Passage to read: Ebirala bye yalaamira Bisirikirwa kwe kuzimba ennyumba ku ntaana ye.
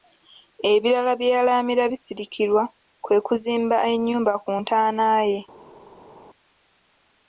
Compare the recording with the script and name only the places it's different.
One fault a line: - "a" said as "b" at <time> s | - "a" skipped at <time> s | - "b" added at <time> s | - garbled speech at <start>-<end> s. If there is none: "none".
none